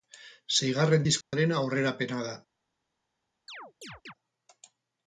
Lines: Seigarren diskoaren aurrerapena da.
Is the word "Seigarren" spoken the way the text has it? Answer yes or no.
yes